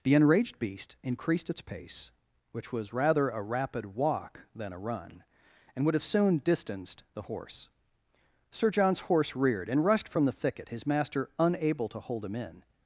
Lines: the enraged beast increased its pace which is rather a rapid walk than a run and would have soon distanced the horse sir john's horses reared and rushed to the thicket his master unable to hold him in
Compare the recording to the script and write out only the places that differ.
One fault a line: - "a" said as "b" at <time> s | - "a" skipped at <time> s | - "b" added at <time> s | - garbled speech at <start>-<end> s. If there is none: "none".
- "is" said as "was" at 2.7 s
- "horses" said as "horse" at 9.0 s
- "to" said as "from" at 10.1 s